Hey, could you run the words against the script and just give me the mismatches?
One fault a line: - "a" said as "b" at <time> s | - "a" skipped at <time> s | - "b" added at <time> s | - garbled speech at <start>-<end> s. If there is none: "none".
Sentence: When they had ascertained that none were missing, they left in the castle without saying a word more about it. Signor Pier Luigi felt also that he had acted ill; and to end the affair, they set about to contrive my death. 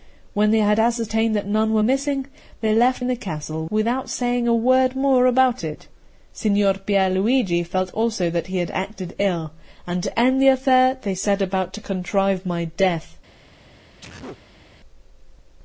none